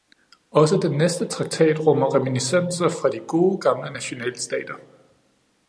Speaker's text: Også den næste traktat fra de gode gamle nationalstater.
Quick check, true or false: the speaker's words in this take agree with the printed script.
false